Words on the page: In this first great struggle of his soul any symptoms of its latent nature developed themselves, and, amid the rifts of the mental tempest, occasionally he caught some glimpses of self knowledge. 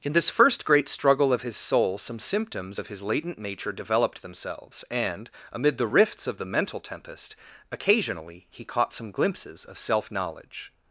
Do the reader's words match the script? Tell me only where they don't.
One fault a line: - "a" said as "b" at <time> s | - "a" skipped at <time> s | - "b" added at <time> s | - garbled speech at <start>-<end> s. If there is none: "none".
- "any" said as "some" at 2.0 s
- "its" said as "his" at 2.9 s